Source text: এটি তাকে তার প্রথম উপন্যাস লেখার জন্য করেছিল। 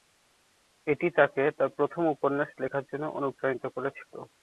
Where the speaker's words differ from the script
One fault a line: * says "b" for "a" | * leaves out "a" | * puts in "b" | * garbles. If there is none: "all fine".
* puts in "অনুপ্রাণিত"